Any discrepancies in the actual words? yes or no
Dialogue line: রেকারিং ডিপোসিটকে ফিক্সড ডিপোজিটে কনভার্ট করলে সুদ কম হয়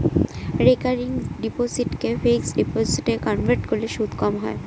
no